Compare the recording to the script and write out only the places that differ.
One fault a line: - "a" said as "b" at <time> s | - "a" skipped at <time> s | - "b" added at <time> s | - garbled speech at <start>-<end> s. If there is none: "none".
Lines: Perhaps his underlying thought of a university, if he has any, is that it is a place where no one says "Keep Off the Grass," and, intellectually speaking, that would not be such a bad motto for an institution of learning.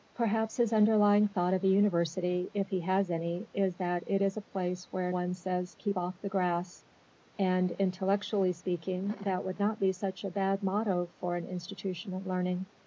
- "no" skipped at 5.1 s